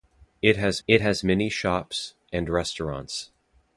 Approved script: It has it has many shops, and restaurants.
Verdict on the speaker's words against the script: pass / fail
pass